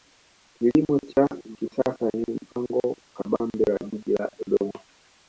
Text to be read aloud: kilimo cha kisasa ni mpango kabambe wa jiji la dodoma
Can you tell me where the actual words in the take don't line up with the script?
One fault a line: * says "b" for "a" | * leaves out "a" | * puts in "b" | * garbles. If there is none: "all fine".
all fine